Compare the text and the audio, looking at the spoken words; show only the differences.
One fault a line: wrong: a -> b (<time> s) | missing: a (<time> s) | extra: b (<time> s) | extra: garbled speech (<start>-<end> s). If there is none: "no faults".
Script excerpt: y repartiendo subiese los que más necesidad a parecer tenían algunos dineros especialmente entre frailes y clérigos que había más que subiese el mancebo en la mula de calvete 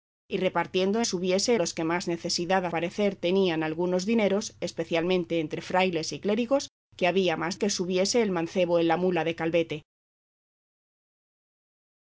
no faults